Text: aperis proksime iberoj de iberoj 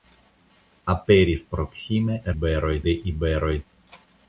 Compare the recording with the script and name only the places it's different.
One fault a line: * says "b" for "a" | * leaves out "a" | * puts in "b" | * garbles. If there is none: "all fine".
all fine